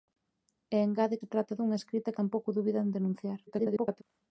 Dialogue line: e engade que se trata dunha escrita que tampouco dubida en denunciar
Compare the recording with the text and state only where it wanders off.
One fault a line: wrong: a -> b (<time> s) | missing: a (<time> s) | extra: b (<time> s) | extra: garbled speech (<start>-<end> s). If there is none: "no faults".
missing: que (1.2 s)
missing: que (2.1 s)
extra: garbled speech (3.5-4.0 s)